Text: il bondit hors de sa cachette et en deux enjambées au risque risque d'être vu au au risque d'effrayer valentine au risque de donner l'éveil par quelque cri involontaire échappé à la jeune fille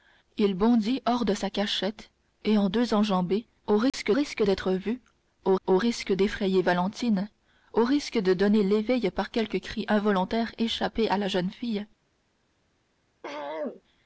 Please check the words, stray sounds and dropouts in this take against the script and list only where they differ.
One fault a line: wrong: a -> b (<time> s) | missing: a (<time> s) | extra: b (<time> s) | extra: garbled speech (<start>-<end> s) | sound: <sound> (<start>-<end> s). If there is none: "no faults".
sound: dropout (3.9-3.9 s)
sound: throat clearing (13.2-13.8 s)